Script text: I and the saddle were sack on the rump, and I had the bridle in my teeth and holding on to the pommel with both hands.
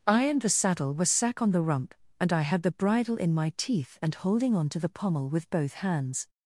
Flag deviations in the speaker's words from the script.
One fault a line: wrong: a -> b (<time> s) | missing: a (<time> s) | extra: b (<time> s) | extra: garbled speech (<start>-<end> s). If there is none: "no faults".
no faults